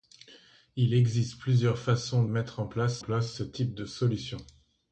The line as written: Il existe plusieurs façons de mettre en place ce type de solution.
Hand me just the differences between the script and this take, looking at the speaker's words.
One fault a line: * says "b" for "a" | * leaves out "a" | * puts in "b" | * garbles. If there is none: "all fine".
* leaves out "de"
* puts in "place"